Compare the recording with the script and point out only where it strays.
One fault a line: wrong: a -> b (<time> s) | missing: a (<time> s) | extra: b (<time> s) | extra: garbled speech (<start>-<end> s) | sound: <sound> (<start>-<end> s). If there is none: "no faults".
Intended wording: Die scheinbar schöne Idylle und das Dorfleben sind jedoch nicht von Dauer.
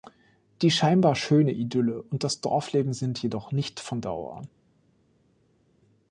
no faults